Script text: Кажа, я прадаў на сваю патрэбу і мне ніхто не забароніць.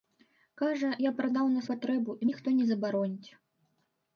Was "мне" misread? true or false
true